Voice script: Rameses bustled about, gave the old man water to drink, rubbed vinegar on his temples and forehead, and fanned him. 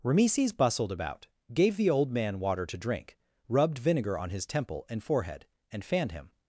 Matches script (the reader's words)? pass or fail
fail